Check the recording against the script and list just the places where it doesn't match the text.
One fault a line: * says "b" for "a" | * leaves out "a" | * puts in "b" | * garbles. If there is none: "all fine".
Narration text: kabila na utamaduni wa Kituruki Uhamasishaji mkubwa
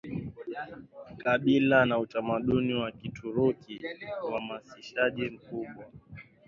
all fine